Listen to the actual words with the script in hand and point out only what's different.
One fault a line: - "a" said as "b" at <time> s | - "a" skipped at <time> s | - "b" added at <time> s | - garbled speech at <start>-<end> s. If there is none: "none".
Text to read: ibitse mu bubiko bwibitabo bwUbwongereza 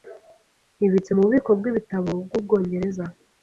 none